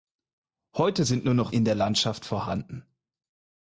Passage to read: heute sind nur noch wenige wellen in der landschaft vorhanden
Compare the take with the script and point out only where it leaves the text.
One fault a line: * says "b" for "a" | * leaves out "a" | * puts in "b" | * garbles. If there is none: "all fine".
* leaves out "wenige wellen"